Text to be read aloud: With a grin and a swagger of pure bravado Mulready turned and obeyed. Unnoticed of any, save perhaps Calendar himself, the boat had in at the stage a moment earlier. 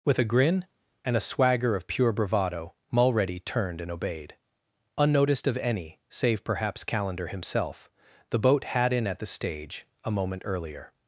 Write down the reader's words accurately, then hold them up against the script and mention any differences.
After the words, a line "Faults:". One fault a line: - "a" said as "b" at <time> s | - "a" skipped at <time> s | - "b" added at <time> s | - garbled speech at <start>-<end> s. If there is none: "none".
With a grin and a swagger of pure bravado Mulready turned and obeyed. Unnoticed of any, save perhaps Calendar himself, the boat had in at the stage a moment earlier.
Faults:
none